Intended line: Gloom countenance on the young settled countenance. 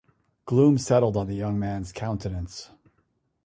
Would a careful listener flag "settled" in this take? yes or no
yes